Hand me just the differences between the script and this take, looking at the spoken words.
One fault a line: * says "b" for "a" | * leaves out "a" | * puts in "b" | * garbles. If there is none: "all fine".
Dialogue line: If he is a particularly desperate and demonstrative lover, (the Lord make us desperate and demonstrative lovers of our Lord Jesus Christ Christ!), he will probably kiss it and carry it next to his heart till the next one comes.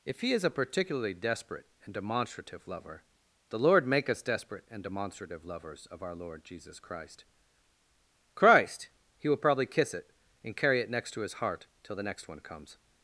all fine